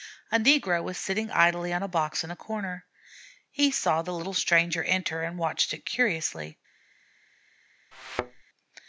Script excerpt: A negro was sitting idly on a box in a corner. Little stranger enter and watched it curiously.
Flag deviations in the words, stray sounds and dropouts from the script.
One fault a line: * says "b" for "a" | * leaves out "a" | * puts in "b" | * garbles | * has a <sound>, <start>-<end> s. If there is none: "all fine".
* puts in "He saw the"
* has a thud, 7.9-8.4 s